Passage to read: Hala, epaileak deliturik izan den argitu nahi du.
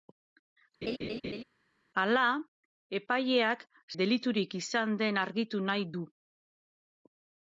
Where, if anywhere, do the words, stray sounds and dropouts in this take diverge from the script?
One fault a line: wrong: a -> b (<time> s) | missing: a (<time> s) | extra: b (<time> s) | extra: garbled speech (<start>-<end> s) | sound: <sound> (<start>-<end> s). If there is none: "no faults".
sound: laugh (0.8-1.4 s)